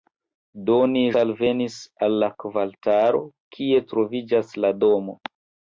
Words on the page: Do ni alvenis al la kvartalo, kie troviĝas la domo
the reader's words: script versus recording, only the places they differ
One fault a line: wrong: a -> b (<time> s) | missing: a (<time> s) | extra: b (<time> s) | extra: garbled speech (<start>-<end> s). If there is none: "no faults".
no faults